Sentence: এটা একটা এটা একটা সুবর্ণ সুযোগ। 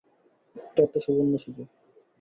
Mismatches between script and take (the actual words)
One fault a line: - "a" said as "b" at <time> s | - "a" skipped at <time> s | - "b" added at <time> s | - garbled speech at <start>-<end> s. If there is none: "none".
- "এটা একটা" skipped at 1.0 s